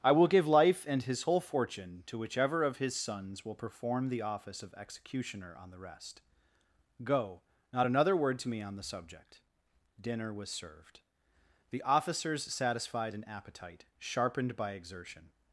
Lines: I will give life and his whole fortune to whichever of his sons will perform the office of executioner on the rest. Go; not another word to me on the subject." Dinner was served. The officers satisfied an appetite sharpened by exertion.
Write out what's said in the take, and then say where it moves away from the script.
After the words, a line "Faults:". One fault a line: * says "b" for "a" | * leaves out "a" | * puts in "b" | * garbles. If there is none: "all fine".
I will give life and his whole fortune to whichever of his sons will perform the office of executioner on the rest. Go; not another word to me on the subject." Dinner was served. The officers satisfied an appetite sharpened by exertion.
Faults:
all fine